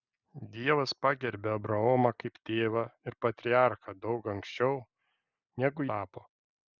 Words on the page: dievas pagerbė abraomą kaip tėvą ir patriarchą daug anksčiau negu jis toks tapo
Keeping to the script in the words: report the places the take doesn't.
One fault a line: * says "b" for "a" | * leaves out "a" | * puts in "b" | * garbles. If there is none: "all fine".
* leaves out "jis toks"